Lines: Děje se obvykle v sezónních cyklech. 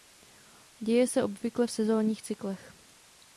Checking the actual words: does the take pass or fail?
pass